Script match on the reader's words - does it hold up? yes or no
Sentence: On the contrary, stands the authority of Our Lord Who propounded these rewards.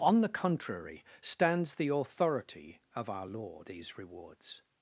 no